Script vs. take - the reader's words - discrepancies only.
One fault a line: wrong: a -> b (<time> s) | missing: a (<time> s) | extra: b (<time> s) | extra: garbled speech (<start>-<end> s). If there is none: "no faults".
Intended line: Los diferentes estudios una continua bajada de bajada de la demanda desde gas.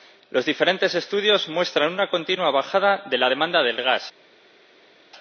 extra: muestran (1.5 s)
missing: bajada de (3.2 s)
wrong: desde -> de (3.6 s)